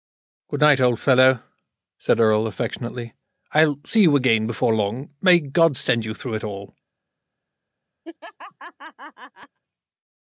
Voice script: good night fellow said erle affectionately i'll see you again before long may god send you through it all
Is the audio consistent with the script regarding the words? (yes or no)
no